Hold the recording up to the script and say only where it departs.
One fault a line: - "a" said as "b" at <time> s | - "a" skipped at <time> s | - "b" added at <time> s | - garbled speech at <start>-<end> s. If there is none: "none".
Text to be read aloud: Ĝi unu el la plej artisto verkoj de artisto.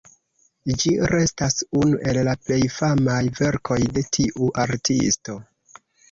- "restas" added at 1.1 s
- "artisto" said as "famaj" at 2.8 s
- "tiu" added at 4.2 s